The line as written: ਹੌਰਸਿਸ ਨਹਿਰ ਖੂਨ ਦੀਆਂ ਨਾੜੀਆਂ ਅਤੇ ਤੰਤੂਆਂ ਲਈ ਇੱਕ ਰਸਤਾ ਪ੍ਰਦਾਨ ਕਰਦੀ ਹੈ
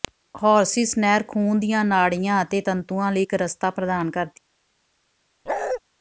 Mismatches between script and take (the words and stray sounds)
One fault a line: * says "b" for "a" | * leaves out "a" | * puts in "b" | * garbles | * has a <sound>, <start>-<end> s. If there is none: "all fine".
* has a bark, 5.5-5.8 s